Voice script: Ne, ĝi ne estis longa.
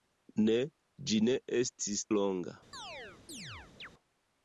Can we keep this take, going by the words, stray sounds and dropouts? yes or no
no